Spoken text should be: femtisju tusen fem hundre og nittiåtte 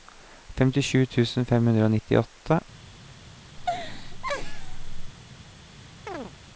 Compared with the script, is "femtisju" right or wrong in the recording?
right